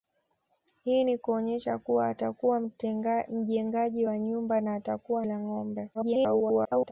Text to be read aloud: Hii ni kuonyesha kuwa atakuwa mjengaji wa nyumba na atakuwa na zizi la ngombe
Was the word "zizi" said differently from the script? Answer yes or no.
yes